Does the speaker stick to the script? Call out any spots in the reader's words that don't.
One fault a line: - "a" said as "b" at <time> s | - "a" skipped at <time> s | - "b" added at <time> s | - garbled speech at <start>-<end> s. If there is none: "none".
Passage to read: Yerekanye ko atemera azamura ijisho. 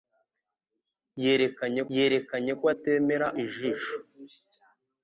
- "yerekanye" added at 1.9 s
- "azamura" skipped at 3.3 s